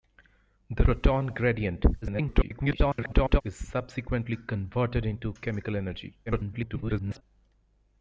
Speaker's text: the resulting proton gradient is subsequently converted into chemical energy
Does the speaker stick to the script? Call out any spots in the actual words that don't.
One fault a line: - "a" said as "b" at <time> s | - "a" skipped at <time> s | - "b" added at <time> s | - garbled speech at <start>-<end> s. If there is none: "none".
- "resulting" skipped at 0.8 s
- garbled speech at 2.0-3.4 s
- garbled speech at 6.3-7.2 s